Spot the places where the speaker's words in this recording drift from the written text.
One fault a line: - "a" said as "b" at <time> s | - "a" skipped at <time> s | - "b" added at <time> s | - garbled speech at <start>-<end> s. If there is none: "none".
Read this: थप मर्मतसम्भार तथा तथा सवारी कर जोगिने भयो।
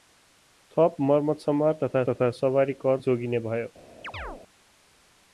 none